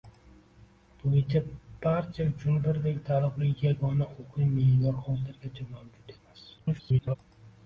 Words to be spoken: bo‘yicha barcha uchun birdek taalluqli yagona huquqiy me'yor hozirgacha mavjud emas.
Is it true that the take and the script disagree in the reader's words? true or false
true